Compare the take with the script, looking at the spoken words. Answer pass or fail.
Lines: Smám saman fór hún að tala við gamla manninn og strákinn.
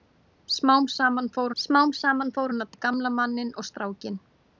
fail